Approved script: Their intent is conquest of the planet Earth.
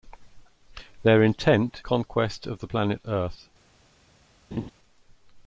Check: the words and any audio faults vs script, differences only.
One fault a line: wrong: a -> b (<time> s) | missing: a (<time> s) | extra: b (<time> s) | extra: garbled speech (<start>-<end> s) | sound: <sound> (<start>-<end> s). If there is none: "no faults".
missing: is (1.8 s)
sound: laugh (4.5-4.7 s)